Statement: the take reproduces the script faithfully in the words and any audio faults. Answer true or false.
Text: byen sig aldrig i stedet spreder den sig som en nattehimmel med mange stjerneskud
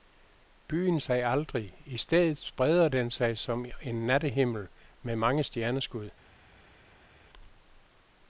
true